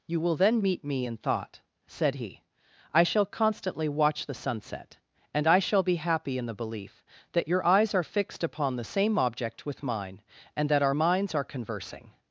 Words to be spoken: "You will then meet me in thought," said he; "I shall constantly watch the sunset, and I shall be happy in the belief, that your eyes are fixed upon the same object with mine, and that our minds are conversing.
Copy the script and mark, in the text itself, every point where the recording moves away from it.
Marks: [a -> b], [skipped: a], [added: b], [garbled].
"You will then meet me in thought," said he; "I shall constantly watch the sunset, and I shall be happy in the belief, that your eyes are fixed upon the same object with mine, and that our minds are conversing.